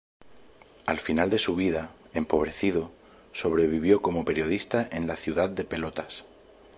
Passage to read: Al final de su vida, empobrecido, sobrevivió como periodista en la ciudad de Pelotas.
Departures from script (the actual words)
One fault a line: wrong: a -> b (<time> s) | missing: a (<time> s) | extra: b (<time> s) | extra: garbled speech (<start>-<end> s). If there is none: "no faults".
no faults